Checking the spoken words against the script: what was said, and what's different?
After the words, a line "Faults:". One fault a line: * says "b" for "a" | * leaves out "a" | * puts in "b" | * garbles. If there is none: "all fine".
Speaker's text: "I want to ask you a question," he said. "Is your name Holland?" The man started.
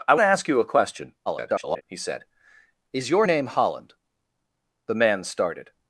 "I to ask you a question," [garbled] he said. "Is your name Holland?" The man started.
Faults:
* leaves out "want"
* garbles